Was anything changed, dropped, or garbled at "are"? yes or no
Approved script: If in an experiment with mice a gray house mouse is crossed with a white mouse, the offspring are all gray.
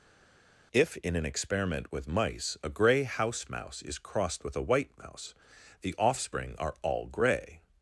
no